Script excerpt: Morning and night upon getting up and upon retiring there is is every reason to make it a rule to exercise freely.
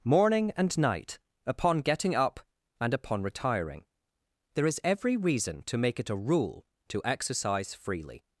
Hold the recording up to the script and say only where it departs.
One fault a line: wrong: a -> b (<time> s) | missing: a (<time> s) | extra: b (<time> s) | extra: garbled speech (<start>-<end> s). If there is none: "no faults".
missing: is (4.8 s)